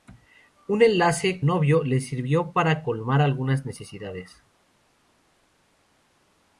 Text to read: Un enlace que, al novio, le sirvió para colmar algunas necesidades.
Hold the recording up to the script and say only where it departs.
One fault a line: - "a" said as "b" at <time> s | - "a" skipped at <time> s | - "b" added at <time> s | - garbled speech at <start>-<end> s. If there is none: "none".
- "que al" skipped at 1.4 s